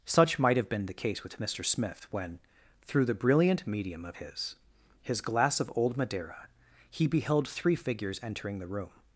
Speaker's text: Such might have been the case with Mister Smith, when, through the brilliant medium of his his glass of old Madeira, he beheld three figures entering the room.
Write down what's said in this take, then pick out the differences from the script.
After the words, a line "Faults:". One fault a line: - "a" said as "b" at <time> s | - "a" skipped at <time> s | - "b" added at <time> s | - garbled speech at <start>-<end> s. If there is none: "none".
Such might have been the case with Mister Smith, when, through the brilliant medium of his his glass of old Madeira, he beheld three figures entering the room.
Faults:
none